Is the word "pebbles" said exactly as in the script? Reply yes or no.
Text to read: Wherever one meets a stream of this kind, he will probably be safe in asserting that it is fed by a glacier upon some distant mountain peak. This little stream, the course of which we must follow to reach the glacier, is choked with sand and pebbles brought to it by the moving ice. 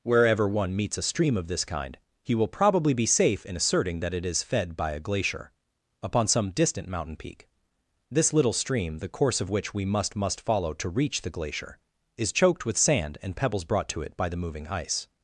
yes